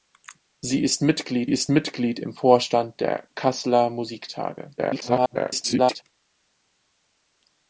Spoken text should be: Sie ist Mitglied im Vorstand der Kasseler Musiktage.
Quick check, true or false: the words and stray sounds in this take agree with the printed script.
false